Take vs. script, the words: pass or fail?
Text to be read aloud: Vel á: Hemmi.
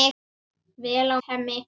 pass